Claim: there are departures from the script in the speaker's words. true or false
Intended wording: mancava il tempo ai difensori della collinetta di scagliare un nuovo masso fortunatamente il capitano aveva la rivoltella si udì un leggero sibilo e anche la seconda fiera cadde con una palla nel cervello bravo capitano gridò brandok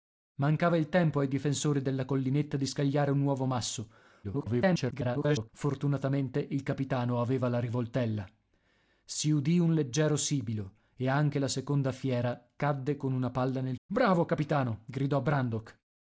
true